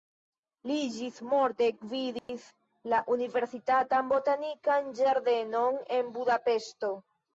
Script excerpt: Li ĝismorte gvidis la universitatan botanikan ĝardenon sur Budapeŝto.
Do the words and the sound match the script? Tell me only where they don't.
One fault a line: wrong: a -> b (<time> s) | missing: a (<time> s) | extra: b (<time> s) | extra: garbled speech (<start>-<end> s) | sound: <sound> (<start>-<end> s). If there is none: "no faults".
sound: dropout (2.2-2.3 s)
wrong: sur -> en (6.0 s)